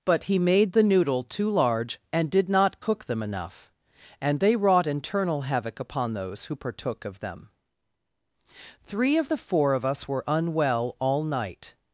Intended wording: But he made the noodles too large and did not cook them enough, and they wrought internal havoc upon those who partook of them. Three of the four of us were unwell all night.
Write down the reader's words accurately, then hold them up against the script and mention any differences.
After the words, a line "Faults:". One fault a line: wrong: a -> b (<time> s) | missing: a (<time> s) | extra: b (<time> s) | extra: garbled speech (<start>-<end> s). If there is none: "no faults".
But he made the noodle too large and did not cook them enough, and they wrought internal havoc upon those who partook of them. Three of the four of us were unwell all night.
Faults:
wrong: noodles -> noodle (0.8 s)